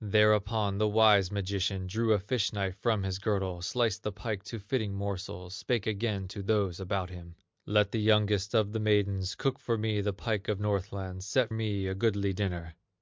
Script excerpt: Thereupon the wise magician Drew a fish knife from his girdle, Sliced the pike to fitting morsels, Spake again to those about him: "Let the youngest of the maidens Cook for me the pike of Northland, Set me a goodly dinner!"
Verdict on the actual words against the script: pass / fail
pass